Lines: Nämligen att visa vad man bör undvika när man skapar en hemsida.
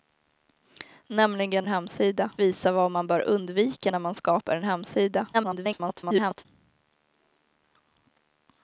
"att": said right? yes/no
no